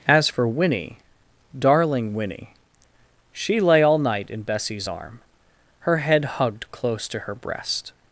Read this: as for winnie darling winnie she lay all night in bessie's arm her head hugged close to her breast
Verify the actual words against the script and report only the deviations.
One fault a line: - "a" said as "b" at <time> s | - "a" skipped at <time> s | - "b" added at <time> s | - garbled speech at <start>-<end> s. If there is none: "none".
none